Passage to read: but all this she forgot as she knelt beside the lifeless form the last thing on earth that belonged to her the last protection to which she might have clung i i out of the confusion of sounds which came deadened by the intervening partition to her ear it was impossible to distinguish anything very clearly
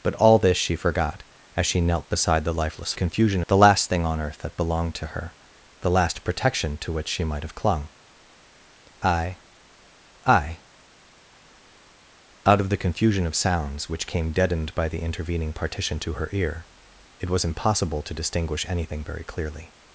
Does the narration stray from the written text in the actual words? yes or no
yes